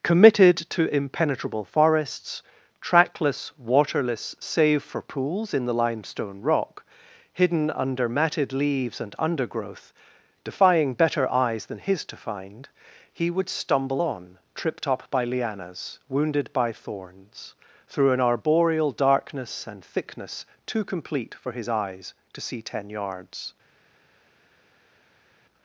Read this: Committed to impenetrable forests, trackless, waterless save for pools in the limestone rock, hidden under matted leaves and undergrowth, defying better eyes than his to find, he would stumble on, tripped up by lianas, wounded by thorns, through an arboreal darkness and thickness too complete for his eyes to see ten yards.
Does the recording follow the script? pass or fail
pass